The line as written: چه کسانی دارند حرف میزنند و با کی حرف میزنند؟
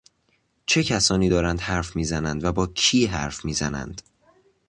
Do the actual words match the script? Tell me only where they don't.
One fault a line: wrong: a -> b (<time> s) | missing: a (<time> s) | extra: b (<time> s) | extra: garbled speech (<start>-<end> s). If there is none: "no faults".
no faults